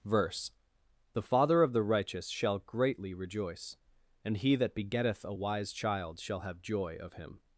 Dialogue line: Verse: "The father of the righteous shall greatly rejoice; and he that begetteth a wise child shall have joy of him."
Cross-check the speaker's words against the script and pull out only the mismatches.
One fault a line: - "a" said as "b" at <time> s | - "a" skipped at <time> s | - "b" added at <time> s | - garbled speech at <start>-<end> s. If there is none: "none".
none